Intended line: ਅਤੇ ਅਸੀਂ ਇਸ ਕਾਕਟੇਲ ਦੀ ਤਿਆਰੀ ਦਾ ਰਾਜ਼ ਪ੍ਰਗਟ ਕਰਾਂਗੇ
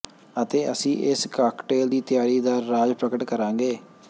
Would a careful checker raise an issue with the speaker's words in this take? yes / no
no